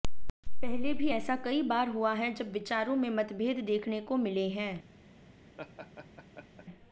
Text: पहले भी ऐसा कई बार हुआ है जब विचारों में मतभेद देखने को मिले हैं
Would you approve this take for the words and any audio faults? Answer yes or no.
no